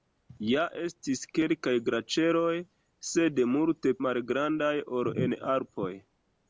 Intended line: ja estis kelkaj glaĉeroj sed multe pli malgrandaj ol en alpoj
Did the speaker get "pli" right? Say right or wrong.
wrong